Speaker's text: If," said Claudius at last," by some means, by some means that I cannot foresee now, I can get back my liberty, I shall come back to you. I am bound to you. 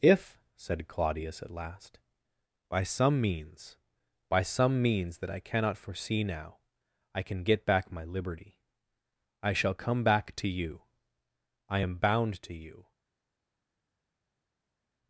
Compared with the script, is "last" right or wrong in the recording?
right